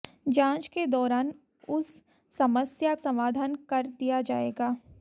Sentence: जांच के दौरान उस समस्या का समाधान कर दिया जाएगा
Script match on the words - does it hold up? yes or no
no